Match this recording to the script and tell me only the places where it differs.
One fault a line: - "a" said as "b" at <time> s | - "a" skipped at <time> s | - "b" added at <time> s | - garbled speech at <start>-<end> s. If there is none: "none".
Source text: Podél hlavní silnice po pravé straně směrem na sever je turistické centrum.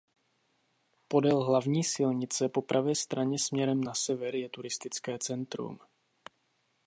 none